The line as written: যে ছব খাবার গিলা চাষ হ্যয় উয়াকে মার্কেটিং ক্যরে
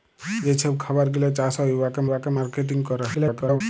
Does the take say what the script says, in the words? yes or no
no